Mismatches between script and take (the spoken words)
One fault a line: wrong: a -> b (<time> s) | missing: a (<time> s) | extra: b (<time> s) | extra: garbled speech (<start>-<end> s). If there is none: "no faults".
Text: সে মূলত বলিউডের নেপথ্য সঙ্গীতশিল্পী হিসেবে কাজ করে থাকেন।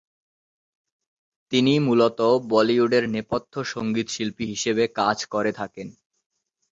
wrong: সে -> তিনি (1.5 s)